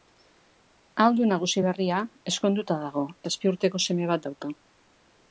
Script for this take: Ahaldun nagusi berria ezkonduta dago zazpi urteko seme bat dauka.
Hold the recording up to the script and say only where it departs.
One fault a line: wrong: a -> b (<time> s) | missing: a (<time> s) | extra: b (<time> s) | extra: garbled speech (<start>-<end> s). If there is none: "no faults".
no faults